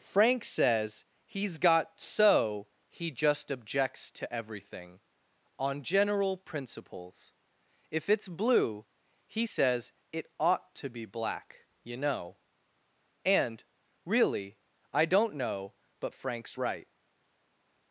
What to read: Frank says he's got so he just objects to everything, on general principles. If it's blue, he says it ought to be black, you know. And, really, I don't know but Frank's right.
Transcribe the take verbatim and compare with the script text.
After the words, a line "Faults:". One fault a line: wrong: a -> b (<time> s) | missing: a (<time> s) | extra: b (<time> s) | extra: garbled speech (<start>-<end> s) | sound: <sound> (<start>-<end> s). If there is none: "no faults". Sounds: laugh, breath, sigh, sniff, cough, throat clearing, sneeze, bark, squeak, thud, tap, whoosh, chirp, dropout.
Frank says he's got so he just objects to everything, on general principles. If it's blue, he says it ought to be black, you know. And, really, I don't know but Frank's right.
Faults:
no faults